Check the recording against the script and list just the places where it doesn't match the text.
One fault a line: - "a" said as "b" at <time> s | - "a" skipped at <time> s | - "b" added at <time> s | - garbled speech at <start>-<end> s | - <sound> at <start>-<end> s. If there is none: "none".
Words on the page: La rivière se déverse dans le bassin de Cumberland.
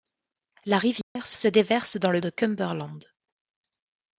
- dropout at 1.0-1.2 s
- "se" added at 1.4 s
- "bassin" skipped at 2.2 s